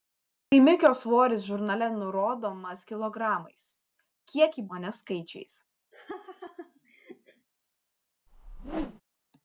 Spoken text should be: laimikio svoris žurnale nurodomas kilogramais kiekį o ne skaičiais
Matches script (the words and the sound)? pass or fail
fail